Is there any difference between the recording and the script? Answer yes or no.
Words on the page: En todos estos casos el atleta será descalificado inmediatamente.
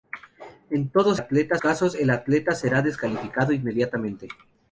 yes